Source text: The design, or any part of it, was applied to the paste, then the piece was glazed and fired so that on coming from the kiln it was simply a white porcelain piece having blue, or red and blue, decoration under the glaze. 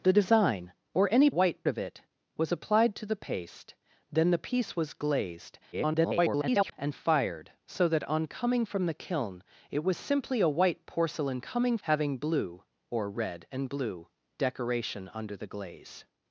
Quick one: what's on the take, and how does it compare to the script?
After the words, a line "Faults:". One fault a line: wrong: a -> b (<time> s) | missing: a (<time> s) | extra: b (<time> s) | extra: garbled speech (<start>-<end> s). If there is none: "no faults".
The design, or any white of it, was applied to the paste, then the piece was glazed [garbled] and fired so that on coming from the kiln it was simply a white porcelain coming having blue, or red and blue, decoration under the glaze.
Faults:
wrong: part -> white (1.3 s)
extra: garbled speech (5.7-6.7 s)
wrong: piece -> coming (11.4 s)